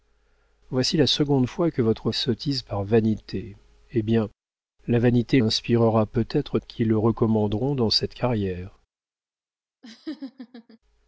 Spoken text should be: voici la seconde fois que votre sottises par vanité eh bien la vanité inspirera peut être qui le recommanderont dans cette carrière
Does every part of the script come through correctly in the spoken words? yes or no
yes